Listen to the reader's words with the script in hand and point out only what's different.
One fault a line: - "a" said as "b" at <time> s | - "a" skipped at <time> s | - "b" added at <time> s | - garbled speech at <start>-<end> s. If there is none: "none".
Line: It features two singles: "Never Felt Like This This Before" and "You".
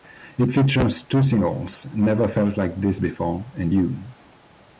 - "This" skipped at 3.0 s